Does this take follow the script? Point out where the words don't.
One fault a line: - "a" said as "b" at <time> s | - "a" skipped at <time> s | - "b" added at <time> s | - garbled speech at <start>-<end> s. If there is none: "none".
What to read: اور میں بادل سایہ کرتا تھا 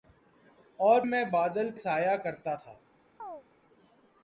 none